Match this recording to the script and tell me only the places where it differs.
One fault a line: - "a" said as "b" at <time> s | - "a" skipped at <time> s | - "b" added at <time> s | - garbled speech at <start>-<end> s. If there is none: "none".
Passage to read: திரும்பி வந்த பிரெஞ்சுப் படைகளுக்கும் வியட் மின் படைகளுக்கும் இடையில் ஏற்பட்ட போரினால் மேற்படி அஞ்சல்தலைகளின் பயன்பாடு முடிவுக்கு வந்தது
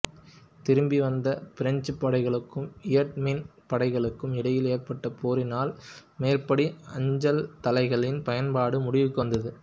none